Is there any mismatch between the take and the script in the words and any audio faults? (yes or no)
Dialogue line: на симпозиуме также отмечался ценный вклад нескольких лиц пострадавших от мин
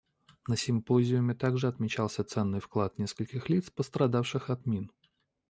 no